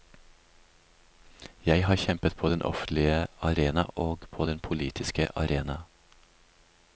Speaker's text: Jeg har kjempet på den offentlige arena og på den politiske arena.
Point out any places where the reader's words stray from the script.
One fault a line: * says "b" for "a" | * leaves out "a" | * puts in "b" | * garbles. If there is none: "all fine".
all fine